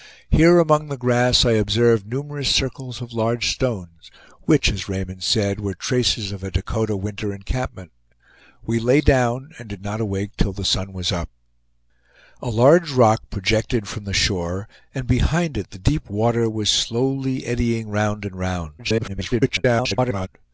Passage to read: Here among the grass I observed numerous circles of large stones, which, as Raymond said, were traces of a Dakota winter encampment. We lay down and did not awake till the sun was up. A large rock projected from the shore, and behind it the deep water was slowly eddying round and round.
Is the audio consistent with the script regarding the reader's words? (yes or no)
no